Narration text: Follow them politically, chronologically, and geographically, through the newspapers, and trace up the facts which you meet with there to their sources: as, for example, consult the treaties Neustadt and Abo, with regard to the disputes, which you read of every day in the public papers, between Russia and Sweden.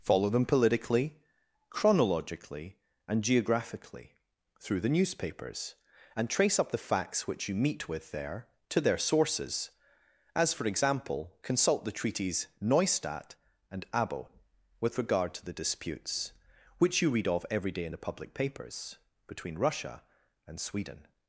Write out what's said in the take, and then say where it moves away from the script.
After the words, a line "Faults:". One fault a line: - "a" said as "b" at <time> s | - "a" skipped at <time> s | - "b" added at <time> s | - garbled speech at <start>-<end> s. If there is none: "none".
Follow them politically, chronologically, and geographically, through the newspapers, and trace up the facts which you meet with there to their sources: as, for example, consult the treaties Neustadt and Abo, with regard to the disputes, which you read of every day in the public papers, between Russia and Sweden.
Faults:
none